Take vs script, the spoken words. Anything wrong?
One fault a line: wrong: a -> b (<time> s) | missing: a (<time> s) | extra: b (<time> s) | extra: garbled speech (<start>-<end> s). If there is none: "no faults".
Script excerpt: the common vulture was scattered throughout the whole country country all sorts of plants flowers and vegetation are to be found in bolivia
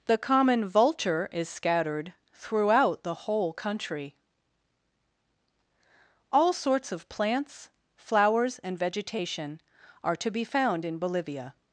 wrong: was -> is (1.3 s)
missing: country (4.2 s)